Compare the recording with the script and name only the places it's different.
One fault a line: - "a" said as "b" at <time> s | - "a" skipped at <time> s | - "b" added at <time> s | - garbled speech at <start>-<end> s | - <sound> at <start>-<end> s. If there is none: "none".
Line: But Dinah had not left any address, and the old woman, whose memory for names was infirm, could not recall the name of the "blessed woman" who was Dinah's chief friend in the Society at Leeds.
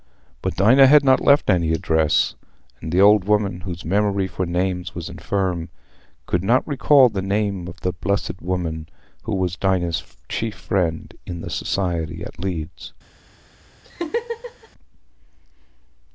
- laugh at 13.8-14.7 s